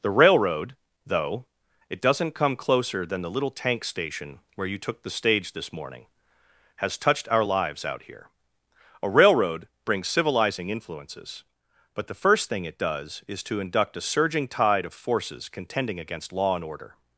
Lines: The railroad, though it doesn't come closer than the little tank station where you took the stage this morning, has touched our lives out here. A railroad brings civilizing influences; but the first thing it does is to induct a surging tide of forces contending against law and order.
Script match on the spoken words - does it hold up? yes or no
yes